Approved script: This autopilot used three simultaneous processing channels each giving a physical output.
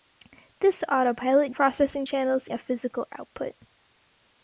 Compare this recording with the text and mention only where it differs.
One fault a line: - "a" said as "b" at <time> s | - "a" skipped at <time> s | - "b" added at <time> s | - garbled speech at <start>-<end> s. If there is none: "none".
- "used three simultaneous" skipped at 1.5 s
- "each giving" skipped at 2.5 s